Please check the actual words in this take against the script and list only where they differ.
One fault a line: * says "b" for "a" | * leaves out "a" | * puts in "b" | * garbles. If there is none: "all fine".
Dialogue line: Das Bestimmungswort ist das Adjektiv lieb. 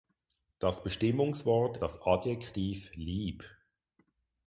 * leaves out "ist"